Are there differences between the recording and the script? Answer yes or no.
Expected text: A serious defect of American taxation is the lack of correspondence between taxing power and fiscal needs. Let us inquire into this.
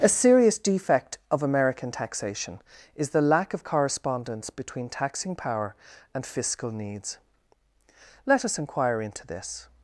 no